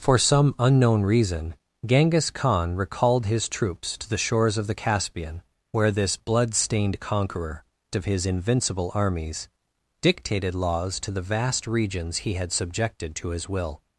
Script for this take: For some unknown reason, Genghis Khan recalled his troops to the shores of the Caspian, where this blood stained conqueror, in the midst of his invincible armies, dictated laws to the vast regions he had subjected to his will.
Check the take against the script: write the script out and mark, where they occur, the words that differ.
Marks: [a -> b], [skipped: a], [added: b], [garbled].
For some unknown reason, Genghis Khan recalled his troops to the shores of the Caspian, where this blood stained conqueror, [skipped: in the midst] of his invincible armies, dictated laws to the vast regions he had subjected to his will.